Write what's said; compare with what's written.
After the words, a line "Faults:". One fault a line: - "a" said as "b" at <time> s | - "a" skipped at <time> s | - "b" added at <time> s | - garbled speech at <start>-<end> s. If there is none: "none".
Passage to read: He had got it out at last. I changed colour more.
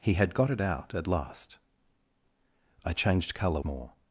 He had got it out at last. I changed colour more.
Faults:
none